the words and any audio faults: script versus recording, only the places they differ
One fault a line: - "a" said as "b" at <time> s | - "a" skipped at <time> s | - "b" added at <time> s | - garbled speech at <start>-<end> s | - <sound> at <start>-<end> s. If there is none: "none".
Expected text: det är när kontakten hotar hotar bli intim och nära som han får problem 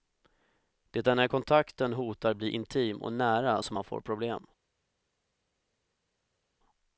- "hotar" skipped at 2.3 s